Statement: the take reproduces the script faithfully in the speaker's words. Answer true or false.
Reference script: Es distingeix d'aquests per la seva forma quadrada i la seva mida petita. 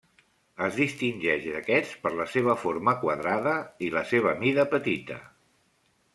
true